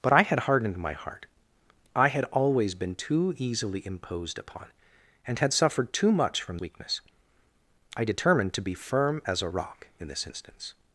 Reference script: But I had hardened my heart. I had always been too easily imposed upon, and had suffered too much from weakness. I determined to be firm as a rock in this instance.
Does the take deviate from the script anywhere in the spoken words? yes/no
no